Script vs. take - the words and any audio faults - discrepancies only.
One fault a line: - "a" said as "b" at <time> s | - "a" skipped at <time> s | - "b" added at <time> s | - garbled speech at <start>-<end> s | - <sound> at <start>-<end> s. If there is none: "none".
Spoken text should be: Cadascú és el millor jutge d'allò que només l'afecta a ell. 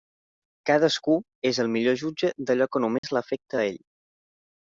- dropout at 3.0-3.0 s